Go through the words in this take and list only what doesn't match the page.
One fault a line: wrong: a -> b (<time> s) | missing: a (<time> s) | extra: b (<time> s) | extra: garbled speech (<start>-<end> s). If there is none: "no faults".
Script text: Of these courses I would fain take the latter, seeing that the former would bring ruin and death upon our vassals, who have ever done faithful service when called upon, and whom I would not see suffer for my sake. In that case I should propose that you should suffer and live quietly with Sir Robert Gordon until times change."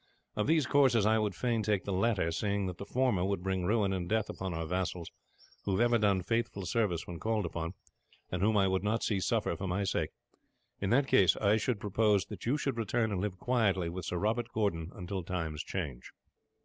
wrong: suffer -> return (12.8 s)